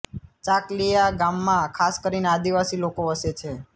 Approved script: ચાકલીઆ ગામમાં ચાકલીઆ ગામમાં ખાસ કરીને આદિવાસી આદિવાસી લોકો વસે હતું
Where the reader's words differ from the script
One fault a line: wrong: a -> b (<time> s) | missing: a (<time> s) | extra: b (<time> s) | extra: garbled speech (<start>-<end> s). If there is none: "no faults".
missing: ચાકલીઆ ગામમાં (1.8 s)
missing: આદિવાસી (2.8 s)
wrong: હતું -> છે (3.3 s)